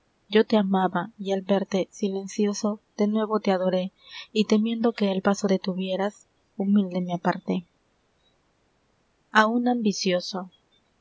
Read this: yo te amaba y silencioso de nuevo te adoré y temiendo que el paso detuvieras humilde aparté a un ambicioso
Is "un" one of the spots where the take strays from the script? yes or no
no